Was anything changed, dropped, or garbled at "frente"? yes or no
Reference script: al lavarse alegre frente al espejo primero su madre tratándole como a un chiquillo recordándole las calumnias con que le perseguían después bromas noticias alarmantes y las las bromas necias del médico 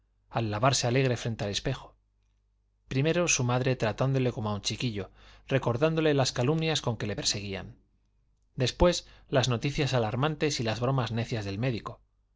no